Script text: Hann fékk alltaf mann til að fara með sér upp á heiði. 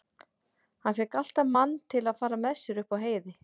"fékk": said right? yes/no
yes